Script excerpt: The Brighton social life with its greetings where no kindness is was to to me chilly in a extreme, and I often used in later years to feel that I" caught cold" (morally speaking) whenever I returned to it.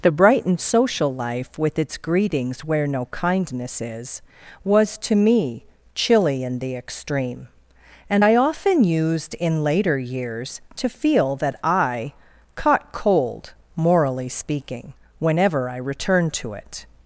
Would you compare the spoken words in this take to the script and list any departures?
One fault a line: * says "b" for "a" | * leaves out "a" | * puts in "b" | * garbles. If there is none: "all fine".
* leaves out "to"
* says "the" for "a"